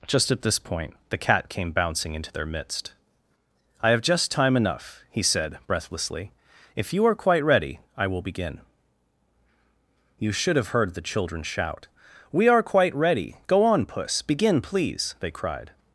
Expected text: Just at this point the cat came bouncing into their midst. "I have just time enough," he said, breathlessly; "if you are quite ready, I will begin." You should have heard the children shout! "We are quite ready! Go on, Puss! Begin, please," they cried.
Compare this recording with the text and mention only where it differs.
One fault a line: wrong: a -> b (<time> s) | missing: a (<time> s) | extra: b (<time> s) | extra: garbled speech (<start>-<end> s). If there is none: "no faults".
no faults